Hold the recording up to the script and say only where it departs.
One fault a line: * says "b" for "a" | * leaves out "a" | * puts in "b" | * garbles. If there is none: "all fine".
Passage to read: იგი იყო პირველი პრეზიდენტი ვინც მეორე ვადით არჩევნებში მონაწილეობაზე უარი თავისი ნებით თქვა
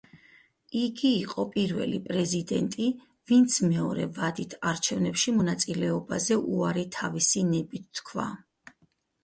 all fine